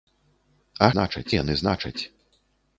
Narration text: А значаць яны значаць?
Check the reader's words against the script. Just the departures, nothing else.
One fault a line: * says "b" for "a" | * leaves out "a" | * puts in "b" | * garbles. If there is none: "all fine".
all fine